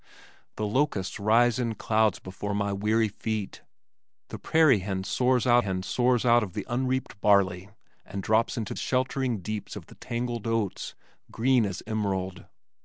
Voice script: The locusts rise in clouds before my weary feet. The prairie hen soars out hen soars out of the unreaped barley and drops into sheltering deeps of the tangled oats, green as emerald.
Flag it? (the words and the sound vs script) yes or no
no